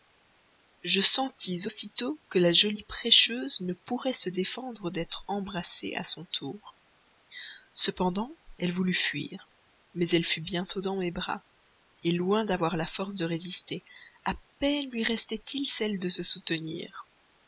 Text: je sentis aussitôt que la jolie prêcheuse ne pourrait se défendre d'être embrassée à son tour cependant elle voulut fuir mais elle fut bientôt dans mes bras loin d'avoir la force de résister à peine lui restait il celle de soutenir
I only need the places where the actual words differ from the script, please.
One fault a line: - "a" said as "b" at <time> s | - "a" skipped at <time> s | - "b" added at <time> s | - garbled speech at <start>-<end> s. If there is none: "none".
- "se" added at 16.1 s